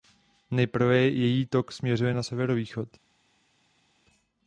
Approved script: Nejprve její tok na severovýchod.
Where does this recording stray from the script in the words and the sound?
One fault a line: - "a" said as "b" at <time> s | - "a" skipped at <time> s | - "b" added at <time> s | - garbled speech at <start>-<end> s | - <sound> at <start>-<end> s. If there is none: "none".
- "směřuje" added at 1.7 s